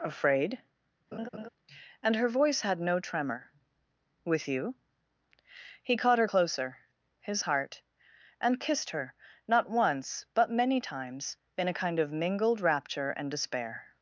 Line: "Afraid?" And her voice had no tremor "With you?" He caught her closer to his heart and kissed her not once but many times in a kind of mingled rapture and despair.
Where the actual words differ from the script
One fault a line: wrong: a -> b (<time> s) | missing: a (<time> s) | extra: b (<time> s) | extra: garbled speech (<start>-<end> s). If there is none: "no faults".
missing: to (6.8 s)